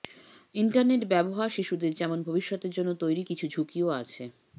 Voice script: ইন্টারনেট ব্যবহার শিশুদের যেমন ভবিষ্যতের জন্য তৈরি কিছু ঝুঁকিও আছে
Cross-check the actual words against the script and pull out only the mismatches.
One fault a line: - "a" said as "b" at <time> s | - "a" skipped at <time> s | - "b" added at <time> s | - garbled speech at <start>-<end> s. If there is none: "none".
none